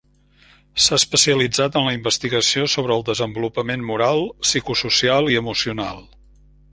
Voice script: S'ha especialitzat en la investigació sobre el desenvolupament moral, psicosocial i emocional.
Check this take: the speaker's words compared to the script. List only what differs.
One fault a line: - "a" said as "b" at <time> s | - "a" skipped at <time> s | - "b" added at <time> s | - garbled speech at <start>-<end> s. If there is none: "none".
none